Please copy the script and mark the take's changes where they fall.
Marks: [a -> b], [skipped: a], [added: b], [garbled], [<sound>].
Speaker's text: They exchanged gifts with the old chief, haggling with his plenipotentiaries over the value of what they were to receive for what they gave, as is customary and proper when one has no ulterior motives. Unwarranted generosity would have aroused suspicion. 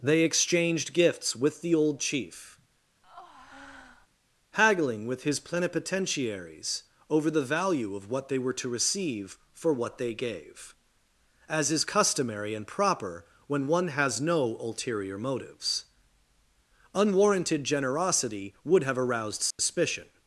They exchanged gifts with the old chief, [breath] haggling with his plenipotentiaries over the value of what they were to receive for what they gave, as is customary and proper when one has no ulterior motives. Unwarranted generosity would have aroused suspicion. [dropout]